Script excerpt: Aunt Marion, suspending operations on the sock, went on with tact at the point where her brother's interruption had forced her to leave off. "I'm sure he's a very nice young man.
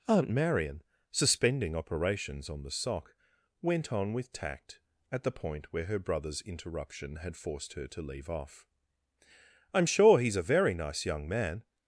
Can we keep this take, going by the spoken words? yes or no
yes